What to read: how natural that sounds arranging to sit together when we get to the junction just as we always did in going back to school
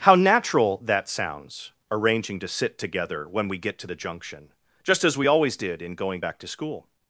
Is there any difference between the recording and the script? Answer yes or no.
no